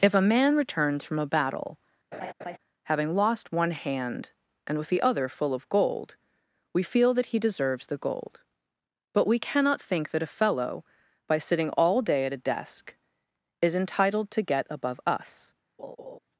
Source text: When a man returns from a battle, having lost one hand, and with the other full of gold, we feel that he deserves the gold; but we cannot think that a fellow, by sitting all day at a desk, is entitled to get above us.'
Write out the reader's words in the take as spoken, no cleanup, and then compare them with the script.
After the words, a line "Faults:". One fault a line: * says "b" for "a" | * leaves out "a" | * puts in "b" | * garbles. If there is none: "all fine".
If a man returns from a battle, having lost one hand, and with the other full of gold, we feel that he deserves the gold; but we cannot think that a fellow, by sitting all day at a desk, is entitled to get above us.'
Faults:
* says "If" for "When"